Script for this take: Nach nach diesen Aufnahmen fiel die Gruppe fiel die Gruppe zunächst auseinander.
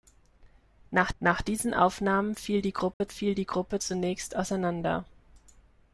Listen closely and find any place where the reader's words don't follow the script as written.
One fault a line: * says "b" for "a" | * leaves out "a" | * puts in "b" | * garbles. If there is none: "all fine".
all fine